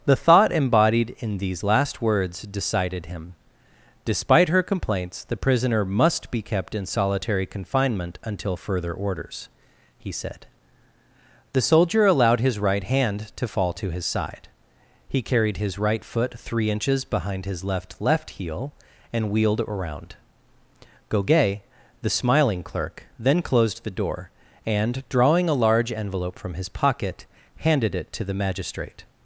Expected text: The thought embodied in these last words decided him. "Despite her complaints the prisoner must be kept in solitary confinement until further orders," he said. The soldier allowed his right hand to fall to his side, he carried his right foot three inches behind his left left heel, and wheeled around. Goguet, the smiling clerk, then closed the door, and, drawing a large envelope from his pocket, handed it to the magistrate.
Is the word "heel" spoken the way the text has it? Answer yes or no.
yes